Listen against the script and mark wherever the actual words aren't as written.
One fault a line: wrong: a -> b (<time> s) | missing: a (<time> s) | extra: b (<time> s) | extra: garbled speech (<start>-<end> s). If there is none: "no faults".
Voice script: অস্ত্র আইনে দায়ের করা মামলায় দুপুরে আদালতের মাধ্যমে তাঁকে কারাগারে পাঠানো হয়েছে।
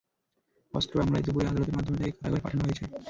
missing: আইনে দায়ের করা (0.9 s)